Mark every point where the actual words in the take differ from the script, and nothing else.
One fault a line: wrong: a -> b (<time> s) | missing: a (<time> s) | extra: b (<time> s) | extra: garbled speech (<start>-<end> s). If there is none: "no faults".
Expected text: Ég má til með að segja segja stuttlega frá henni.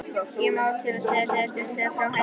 no faults